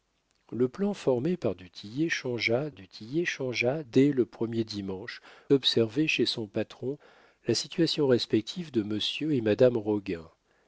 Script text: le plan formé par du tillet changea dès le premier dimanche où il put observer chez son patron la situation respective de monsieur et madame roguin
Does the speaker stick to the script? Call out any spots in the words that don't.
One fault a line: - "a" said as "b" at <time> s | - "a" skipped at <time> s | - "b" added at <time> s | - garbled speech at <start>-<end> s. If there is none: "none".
- "du tillet changea" added at 2.7 s
- "où il put" skipped at 5.2 s